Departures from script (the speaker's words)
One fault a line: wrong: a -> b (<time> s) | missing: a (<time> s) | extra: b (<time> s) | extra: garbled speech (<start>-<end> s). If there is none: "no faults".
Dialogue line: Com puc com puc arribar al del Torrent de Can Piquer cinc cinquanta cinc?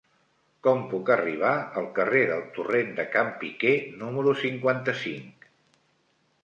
missing: com puc (1.1 s)
extra: carrer (2.0 s)
wrong: cinc -> número (4.0 s)